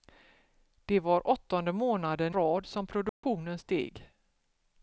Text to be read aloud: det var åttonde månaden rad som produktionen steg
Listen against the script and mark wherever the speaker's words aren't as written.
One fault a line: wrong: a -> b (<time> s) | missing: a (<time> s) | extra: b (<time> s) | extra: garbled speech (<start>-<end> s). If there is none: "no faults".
no faults